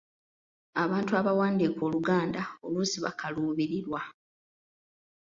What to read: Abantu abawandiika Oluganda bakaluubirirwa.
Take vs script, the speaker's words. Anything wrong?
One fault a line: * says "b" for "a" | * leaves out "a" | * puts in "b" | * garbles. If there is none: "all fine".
* puts in "oluusi"